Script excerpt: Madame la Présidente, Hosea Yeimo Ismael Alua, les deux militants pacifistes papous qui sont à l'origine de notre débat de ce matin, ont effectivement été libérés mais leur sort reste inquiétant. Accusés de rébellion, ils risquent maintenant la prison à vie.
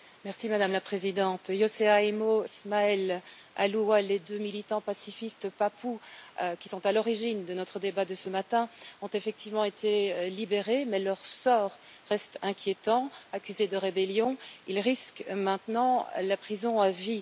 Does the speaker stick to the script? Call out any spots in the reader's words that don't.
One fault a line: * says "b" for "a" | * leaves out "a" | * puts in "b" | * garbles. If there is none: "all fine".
all fine